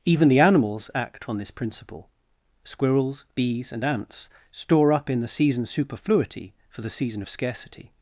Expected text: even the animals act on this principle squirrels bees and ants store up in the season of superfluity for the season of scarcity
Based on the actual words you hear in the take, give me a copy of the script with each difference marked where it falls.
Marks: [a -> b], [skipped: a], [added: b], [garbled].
even the animals act on this principle squirrels bees and ants store up in the season [skipped: of] superfluity for the season of scarcity